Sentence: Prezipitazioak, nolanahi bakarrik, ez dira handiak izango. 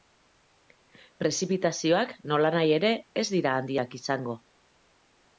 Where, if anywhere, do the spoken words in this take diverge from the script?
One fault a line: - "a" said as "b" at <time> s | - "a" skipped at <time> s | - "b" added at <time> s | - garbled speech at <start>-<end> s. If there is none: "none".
- "bakarrik" said as "ere" at 2.8 s